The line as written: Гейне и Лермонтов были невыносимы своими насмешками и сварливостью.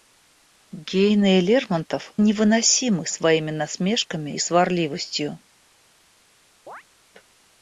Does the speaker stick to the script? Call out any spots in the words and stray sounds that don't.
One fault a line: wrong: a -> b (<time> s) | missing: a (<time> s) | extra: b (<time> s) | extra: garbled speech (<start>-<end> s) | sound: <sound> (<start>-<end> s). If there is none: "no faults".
missing: были (2.1 s)
sound: chirp (6.7-6.8 s)